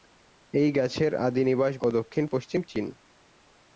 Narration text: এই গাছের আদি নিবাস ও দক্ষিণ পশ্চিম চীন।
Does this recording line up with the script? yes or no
yes